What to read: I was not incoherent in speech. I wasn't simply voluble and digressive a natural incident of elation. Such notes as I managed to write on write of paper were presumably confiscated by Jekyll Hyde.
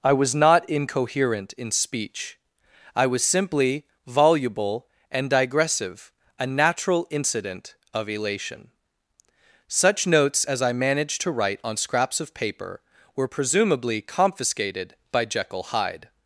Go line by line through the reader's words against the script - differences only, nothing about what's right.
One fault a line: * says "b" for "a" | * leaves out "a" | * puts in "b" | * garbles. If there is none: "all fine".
* says "was" for "wasn't"
* says "scraps" for "write"